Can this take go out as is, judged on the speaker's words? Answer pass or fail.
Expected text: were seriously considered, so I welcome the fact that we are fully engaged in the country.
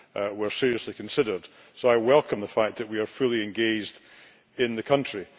pass